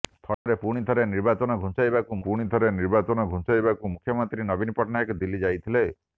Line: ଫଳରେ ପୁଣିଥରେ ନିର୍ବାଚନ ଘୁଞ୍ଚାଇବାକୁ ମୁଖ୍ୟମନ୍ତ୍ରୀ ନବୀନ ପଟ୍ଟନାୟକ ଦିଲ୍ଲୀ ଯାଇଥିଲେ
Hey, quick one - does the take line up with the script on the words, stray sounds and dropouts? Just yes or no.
no